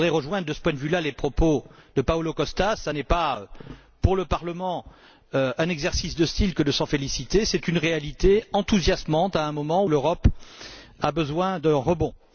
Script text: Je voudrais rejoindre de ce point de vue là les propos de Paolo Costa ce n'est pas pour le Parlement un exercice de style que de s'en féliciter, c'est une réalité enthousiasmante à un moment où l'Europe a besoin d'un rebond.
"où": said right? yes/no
no